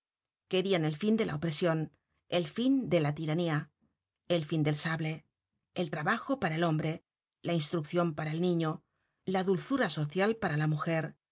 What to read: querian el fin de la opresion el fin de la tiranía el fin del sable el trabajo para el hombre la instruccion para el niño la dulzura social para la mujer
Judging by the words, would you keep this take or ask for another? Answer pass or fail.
pass